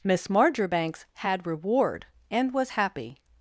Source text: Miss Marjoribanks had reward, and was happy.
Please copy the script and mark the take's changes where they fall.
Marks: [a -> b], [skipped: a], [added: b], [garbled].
Miss Marjoribanks had reward, and was happy.